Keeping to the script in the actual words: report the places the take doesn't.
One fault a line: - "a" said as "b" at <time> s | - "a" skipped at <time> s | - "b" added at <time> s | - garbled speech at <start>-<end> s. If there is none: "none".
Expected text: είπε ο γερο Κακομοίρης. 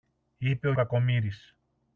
- "γερο" skipped at 0.7 s